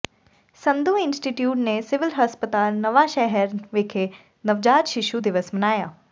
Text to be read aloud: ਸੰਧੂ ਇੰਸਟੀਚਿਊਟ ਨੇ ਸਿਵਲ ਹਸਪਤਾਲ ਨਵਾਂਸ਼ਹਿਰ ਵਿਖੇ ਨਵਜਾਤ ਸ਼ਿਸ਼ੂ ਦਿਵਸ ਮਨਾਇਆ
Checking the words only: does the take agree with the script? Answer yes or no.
yes